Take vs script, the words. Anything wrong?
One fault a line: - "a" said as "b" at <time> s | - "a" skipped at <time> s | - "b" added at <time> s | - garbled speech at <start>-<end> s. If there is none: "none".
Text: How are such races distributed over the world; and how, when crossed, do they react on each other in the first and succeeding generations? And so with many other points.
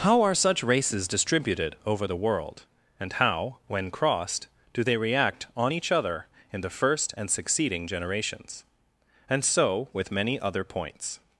none